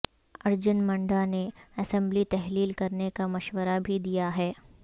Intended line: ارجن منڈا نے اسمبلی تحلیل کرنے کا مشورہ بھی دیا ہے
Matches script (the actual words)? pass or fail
pass